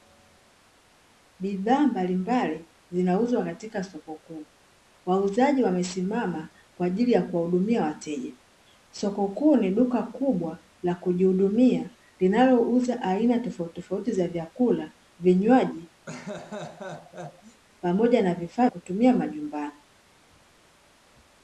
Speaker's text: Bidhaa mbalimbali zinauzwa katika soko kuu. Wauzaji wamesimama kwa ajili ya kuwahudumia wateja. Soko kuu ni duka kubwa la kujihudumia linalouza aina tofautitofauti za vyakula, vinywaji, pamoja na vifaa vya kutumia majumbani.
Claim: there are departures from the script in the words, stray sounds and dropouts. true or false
true